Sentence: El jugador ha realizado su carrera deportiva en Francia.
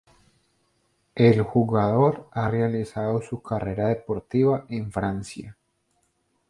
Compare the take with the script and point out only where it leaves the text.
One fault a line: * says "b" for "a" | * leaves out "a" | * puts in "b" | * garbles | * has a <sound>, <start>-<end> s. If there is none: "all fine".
all fine